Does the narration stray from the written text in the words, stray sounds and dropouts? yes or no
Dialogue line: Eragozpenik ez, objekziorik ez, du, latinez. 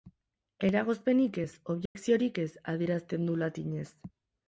yes